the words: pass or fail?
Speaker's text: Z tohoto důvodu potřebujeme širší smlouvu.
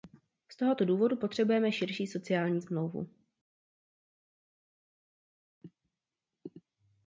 fail